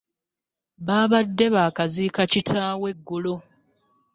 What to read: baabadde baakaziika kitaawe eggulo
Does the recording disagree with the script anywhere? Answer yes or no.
no